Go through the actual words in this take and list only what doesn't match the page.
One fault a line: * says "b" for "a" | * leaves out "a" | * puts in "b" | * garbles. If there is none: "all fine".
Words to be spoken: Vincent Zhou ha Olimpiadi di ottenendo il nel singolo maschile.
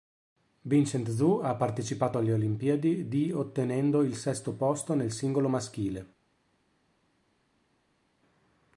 * puts in "partecipato alle"
* puts in "sesto posto"